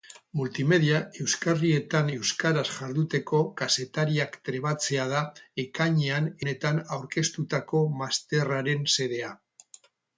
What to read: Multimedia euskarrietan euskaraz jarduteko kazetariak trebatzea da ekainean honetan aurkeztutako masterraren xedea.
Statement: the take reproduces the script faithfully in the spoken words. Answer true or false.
true